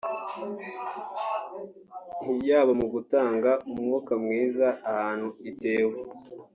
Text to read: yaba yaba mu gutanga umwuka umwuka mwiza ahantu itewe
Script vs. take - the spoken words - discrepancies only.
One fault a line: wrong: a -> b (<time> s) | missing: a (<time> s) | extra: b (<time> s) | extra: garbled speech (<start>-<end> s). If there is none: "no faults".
missing: yaba (2.7 s)
missing: umwuka (4.1 s)